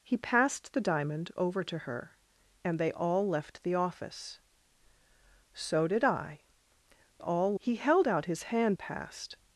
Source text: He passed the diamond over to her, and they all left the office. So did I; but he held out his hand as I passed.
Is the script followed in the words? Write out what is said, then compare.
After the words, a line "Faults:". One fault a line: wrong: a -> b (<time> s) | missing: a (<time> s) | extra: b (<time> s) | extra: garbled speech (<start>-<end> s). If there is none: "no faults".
He passed the diamond over to her, and they all left the office. So did I; all he held out his hand passed.
Faults:
wrong: but -> all (7.2 s)
missing: as I (8.8 s)